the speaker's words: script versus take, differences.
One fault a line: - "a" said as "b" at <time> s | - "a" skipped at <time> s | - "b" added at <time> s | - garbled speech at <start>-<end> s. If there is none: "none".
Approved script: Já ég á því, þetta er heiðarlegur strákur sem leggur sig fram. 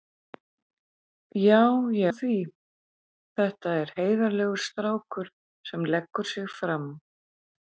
none